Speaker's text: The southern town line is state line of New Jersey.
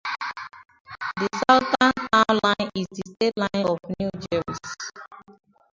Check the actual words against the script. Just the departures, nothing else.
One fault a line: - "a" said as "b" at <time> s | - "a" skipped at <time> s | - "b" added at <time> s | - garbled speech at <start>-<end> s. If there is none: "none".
- "the" added at 2.9 s